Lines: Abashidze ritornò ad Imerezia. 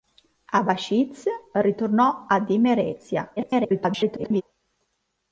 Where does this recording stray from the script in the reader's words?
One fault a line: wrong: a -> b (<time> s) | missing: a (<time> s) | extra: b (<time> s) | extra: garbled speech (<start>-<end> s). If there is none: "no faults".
extra: garbled speech (3.4-4.4 s)